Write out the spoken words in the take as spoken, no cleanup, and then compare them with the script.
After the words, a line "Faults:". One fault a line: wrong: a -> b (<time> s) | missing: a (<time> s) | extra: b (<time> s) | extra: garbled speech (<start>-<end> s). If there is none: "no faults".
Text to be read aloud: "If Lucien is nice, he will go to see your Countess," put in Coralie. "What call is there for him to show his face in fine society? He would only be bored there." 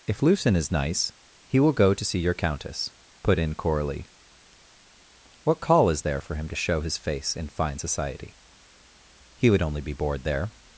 "If Lucien is nice, he will go to see your Countess," put in Coralie. "What call is there for him to show his face in fine society? He would only be bored there."
Faults:
no faults